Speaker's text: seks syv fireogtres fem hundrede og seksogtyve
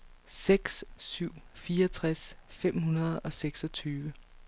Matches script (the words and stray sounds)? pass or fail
pass